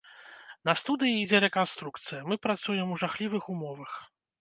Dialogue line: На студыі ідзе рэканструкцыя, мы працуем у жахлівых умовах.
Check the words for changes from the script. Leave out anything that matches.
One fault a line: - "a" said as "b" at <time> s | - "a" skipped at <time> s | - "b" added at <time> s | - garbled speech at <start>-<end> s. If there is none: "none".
none